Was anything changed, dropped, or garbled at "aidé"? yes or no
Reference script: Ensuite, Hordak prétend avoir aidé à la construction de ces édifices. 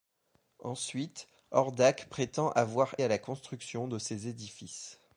yes